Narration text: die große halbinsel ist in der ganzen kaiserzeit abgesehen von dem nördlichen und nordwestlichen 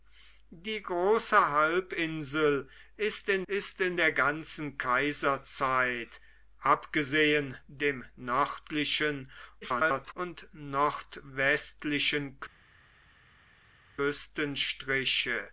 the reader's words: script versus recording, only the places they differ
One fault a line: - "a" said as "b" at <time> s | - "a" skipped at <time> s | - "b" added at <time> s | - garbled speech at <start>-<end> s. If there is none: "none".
- "ist in" added at 3.5 s
- "von" skipped at 7.6 s
- garbled speech at 9.6-10.1 s